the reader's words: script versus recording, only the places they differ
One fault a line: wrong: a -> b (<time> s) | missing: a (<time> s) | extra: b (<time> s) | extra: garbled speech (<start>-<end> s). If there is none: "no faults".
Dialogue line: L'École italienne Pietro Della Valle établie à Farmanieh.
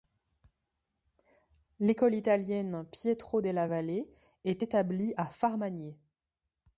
extra: est (4.4 s)